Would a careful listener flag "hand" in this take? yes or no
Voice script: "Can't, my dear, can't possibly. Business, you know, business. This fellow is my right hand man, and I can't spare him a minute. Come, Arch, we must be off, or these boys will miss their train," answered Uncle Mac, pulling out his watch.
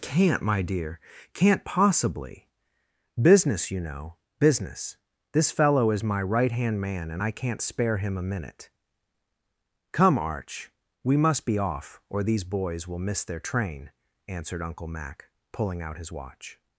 no